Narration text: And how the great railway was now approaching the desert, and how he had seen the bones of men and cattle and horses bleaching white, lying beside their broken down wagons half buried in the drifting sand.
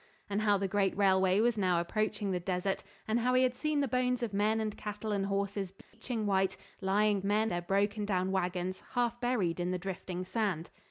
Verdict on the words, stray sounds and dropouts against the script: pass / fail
fail